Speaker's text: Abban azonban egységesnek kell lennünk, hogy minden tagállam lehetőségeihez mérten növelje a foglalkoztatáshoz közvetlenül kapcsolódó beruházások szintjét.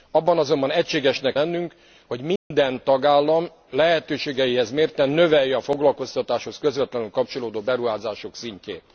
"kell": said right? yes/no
no